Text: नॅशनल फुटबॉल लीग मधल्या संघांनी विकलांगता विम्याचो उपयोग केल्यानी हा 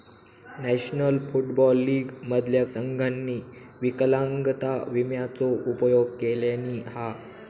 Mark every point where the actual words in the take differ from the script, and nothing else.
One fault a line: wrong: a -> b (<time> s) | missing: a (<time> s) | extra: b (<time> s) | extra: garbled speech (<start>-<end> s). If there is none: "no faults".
no faults